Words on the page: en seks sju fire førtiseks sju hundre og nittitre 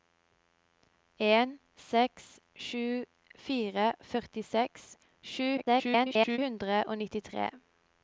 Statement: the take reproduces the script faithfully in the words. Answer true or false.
false